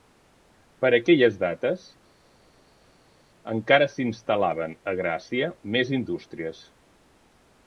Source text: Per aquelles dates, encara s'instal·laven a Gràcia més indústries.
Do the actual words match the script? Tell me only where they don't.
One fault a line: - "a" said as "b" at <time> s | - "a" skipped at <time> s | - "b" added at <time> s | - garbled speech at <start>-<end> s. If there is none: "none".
none